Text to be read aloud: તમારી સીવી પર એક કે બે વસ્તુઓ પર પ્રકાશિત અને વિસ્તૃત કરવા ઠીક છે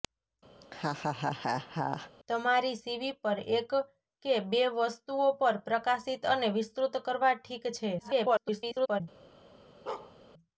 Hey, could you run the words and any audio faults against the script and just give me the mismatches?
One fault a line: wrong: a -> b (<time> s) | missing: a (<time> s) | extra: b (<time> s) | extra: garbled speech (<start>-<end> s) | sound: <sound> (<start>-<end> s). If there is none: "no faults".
sound: laugh (0.6-2.1 s)
extra: garbled speech (8.0-9.0 s)
sound: bark (9.9-10.1 s)